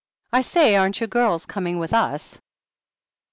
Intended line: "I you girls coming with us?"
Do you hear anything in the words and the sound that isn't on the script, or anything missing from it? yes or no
yes